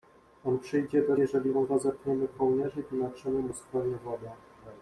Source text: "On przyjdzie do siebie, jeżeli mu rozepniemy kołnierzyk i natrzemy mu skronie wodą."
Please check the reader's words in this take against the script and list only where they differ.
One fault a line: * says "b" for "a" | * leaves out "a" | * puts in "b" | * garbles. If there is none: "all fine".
* leaves out "siebie"